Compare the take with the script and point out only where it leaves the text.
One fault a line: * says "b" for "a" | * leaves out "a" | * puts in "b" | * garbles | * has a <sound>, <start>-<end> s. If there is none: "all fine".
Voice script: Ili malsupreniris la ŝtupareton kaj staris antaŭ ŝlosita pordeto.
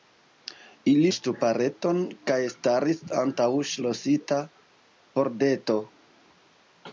* leaves out "malsupreniris la"